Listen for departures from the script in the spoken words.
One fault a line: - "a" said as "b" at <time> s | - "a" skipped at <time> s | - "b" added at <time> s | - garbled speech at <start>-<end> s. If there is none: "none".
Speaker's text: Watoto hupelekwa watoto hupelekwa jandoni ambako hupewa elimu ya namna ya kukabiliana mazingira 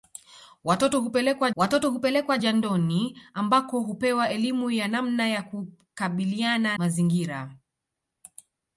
none